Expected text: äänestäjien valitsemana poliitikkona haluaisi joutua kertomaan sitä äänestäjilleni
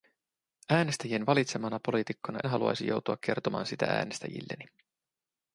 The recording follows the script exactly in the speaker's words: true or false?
true